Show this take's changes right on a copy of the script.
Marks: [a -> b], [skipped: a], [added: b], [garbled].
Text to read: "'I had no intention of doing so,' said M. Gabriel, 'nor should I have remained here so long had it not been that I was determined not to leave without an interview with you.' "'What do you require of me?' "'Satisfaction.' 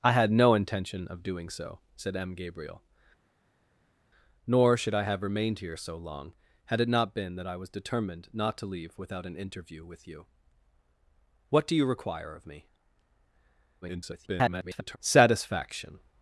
"'I had no intention of doing so,' said M. Gabriel, 'nor should I have remained here so long had it not been that I was determined not to leave without an interview with you.' "'What do you require of me?' [garbled] "'Satisfaction.'